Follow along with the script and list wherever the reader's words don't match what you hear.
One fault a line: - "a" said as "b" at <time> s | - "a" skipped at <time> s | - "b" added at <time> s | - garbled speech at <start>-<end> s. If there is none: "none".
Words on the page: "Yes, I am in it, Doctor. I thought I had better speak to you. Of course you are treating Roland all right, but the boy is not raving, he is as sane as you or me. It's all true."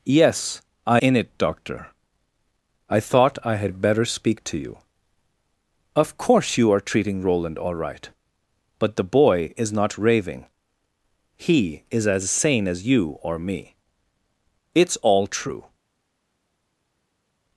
- "am" skipped at 1.0 s